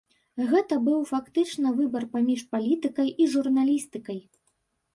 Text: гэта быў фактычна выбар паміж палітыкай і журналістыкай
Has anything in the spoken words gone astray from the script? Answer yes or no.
no